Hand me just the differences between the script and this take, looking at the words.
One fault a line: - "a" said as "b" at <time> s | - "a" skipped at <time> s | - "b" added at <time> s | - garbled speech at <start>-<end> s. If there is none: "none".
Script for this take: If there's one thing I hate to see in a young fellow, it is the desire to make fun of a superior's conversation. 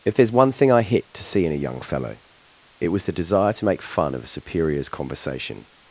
- "hate" said as "hit" at 0.8 s
- "is" said as "was" at 2.9 s